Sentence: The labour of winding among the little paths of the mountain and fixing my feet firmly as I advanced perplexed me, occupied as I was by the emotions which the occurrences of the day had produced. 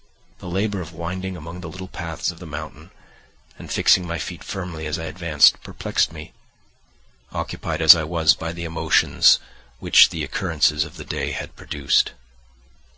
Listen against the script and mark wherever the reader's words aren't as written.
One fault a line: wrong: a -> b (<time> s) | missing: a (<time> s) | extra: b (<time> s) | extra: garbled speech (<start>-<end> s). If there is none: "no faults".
no faults